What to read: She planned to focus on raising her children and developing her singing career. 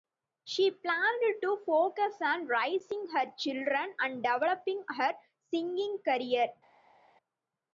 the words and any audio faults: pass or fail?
pass